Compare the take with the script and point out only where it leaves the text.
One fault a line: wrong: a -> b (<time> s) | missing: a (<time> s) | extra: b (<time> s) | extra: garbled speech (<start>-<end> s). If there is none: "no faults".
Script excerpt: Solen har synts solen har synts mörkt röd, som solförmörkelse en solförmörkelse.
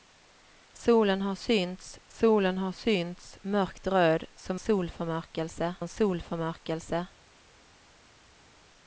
no faults